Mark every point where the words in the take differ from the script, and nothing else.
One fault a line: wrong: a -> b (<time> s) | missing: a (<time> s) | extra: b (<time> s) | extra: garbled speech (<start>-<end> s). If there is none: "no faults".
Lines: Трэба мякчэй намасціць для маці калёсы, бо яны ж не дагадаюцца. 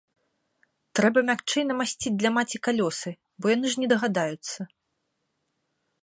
no faults